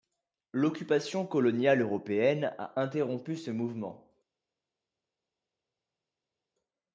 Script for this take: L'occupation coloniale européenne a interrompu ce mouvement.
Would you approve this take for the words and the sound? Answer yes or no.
yes